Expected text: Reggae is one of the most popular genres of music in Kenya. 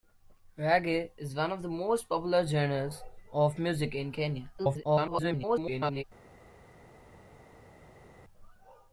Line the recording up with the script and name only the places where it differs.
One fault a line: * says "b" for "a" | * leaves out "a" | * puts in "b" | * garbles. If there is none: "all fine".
* garbles